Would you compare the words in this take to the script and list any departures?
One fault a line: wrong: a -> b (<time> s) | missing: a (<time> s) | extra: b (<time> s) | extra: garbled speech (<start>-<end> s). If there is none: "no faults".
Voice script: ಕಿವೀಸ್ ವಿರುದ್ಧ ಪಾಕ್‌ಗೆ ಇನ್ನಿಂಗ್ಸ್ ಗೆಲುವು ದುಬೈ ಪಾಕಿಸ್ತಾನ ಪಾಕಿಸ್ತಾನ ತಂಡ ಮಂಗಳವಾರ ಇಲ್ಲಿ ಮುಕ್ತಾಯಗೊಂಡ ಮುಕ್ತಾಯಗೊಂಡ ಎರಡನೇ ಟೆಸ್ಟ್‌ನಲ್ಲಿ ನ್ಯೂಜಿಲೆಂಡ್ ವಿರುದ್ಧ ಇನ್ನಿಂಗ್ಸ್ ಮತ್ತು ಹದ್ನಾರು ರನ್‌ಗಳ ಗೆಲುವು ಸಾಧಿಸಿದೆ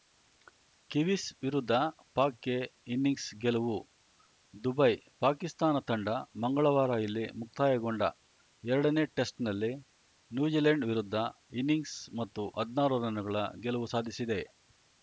missing: ಪಾಕಿಸ್ತಾನ (5.8 s)
missing: ಮುಕ್ತಾಯಗೊಂಡ (8.0 s)